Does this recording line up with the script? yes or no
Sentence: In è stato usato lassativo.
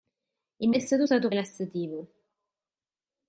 yes